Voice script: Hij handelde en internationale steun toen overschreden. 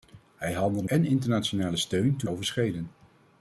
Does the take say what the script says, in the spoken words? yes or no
yes